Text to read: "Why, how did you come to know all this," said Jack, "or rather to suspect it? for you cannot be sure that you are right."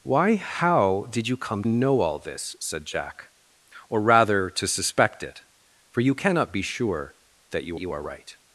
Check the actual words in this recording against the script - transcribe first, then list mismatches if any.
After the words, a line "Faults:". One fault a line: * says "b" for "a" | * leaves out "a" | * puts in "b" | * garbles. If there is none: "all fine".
"Why, how did you come know all this," said Jack, "or rather to suspect it? for you cannot be sure that you you are right."
Faults:
* leaves out "to"
* puts in "you"